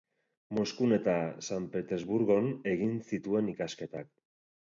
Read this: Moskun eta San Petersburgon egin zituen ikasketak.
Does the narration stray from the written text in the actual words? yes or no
no